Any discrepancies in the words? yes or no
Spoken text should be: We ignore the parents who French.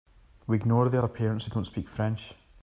yes